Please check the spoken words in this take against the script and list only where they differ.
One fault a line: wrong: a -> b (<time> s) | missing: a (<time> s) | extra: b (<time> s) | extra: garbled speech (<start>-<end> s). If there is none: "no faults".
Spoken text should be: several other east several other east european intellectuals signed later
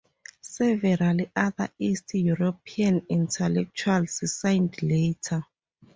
missing: several other east (2.1 s)